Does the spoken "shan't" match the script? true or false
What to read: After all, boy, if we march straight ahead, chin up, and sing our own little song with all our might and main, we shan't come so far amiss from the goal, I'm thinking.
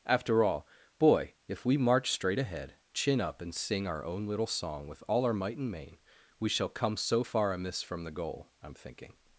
false